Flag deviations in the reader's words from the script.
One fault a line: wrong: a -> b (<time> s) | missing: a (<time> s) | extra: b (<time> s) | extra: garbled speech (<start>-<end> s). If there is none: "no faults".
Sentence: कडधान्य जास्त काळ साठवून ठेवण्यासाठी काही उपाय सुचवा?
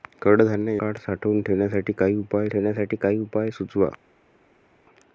missing: जास्त (0.8 s)
extra: ठेवण्यासाठी काही उपाय (2.5 s)